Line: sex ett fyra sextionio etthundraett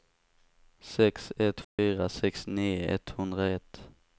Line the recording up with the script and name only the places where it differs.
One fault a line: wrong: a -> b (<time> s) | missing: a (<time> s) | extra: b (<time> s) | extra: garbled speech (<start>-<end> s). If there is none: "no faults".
no faults